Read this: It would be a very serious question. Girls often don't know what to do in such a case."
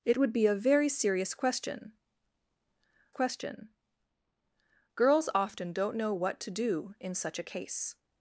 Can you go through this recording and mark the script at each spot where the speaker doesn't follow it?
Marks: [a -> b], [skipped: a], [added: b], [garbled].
It would be a very serious question. [added: question] Girls often don't know what to do in such a case."